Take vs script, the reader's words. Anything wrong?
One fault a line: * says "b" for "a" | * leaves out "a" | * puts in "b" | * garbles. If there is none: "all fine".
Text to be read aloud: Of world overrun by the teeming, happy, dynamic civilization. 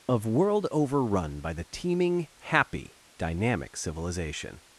all fine